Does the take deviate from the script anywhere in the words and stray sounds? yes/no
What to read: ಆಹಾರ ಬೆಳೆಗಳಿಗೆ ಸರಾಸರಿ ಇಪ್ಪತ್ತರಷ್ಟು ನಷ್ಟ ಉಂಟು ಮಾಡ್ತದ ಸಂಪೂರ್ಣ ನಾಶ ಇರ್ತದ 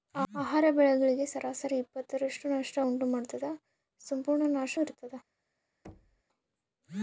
yes